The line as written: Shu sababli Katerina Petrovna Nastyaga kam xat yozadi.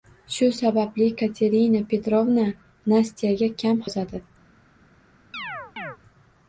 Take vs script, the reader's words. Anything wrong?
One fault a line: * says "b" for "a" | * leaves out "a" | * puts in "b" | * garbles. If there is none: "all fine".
* leaves out "xat"